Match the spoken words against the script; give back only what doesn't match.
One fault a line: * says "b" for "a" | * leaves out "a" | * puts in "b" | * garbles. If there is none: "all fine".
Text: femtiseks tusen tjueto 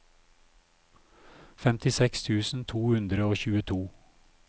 * puts in "to hundre og"